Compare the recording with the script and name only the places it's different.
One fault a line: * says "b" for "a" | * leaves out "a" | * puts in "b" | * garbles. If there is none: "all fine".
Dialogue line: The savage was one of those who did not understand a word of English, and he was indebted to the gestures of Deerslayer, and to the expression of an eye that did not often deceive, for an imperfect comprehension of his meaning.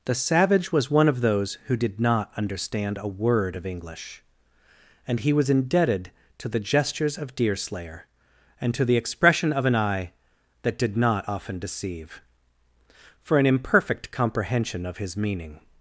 all fine